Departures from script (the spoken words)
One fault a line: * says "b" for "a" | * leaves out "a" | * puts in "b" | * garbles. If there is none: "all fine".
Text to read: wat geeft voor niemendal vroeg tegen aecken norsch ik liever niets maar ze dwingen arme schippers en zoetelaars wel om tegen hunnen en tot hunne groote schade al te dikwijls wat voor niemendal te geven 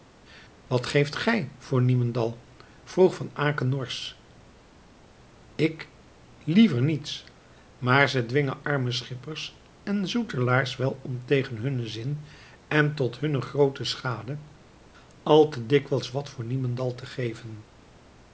* puts in "gij"
* says "van" for "tegen"
* puts in "zin"